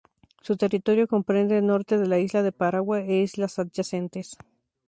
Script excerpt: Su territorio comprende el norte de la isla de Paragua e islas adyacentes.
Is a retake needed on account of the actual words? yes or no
no